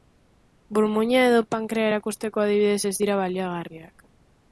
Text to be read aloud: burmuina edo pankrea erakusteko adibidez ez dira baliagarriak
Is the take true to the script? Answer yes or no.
yes